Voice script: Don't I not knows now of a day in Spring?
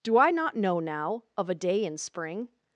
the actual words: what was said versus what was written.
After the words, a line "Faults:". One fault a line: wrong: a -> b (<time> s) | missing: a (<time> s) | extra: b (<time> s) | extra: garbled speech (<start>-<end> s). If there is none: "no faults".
Do I not know now of a day in Spring?
Faults:
wrong: Don't -> Do (0.0 s)
wrong: knows -> know (0.6 s)